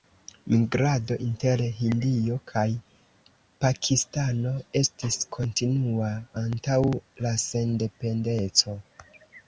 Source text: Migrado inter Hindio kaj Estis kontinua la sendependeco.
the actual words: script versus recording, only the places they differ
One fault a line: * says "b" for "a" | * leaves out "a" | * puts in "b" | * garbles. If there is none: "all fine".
* puts in "Pakistano"
* puts in "antaŭ"